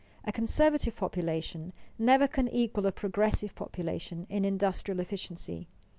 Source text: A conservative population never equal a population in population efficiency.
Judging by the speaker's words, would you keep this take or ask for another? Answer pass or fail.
fail